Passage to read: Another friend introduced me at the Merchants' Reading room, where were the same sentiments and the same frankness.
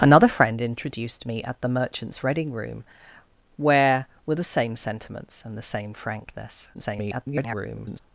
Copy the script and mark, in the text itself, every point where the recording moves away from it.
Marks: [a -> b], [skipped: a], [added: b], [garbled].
Another friend introduced me at the Merchants' Reading room, where were the same sentiments and the same frankness. [garbled]